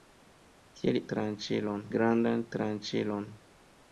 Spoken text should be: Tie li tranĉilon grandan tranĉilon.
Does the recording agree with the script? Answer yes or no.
yes